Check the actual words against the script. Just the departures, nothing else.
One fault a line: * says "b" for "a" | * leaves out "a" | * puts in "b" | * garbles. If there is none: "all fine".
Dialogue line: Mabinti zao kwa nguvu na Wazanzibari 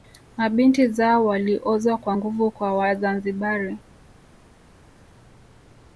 * puts in "waliozwa"
* says "kwa" for "na"